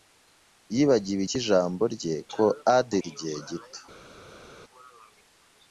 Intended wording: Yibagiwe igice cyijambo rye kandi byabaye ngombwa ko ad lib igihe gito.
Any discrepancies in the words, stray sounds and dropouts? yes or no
yes